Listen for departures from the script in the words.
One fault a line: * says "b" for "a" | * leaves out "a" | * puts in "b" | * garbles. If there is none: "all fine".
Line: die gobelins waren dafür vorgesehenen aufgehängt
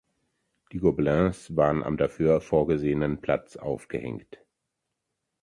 * puts in "am"
* puts in "platz"